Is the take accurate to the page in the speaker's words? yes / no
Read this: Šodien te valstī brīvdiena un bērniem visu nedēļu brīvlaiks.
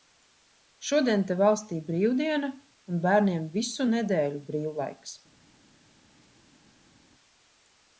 yes